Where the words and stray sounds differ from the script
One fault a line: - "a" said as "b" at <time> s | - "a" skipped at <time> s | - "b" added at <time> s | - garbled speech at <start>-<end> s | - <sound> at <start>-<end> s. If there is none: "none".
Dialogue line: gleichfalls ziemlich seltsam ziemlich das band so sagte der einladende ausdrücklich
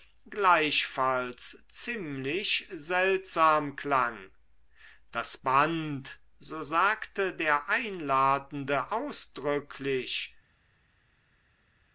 - "ziemlich" said as "klang" at 3.8 s